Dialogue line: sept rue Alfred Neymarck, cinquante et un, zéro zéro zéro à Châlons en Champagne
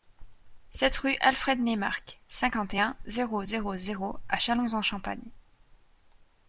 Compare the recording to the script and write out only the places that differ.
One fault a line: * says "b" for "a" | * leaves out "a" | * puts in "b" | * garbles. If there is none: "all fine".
all fine